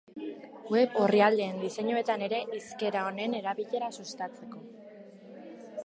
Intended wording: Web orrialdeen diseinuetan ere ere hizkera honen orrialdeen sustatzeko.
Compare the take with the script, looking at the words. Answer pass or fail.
fail